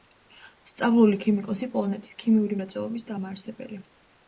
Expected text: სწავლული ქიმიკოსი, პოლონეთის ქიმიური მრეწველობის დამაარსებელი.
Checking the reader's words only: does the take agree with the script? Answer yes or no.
yes